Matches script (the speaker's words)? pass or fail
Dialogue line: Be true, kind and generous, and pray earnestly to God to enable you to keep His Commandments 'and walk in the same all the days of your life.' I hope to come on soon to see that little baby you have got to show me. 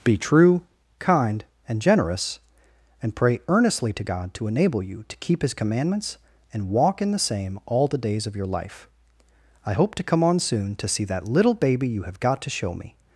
pass